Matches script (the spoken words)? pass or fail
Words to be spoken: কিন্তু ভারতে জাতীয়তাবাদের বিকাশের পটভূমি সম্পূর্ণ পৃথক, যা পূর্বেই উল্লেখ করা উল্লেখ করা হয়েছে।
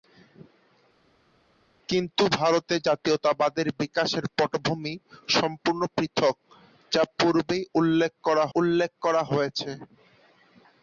pass